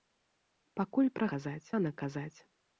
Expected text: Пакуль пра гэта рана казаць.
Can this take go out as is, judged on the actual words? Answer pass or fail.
fail